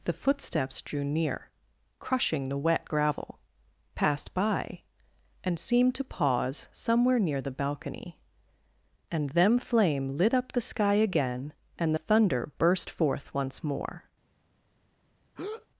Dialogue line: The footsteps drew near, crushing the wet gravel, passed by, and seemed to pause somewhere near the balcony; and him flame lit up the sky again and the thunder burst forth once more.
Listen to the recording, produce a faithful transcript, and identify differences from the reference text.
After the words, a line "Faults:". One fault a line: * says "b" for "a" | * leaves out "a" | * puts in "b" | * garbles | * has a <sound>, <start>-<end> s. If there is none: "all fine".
The footsteps drew near, crushing the wet gravel, passed by, and seemed to pause somewhere near the balcony; and them flame lit up the sky again and the thunder burst forth once more.
Faults:
* says "them" for "him"
* has a breath, 15.4-15.7 s